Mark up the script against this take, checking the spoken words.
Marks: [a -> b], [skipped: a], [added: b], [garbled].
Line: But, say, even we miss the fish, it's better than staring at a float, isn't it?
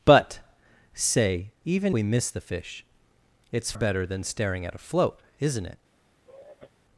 But, say, even we miss the fish, it's better than staring at a float, isn't it?